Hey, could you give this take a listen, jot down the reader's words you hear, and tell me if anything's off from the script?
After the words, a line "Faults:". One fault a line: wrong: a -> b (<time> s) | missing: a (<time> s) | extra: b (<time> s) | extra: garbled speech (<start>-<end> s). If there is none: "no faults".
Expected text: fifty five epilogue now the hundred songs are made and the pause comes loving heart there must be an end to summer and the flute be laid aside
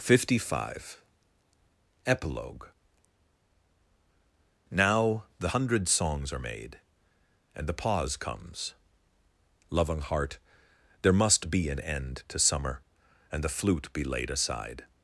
fifty five epilogue now the hundred songs are made and the pause comes loving heart there must be an end to summer and the flute be laid aside
Faults:
no faults